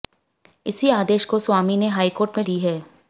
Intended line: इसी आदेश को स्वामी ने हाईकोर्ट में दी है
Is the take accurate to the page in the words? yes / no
yes